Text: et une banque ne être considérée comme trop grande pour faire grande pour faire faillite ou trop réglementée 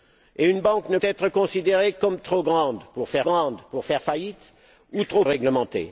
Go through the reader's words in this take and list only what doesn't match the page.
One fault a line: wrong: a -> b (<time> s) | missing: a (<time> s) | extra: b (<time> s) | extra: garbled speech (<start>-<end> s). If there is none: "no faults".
no faults